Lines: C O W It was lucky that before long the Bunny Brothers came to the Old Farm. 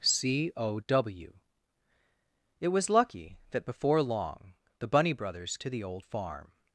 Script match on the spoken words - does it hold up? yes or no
no